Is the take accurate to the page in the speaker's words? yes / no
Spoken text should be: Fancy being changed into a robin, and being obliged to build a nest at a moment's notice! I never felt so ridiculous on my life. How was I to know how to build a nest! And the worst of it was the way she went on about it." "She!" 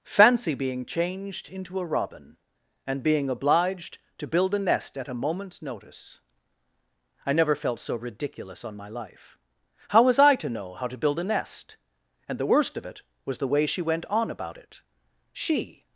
yes